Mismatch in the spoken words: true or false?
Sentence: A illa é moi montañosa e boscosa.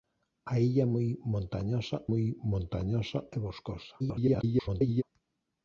true